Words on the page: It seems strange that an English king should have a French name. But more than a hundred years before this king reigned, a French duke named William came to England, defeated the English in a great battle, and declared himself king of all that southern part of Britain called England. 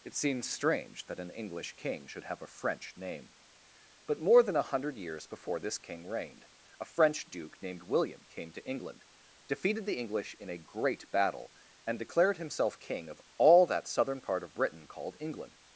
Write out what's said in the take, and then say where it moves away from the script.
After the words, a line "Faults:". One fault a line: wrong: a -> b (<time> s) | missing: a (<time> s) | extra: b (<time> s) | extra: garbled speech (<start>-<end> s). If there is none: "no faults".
It seems strange that an English king should have a French name. But more than a hundred years before this king reigned, a French duke named William came to England, defeated the English in a great battle, and declared himself king of all that southern part of Britain called England.
Faults:
no faults